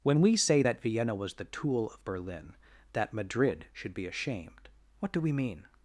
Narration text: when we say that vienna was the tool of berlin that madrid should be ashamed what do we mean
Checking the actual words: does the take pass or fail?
pass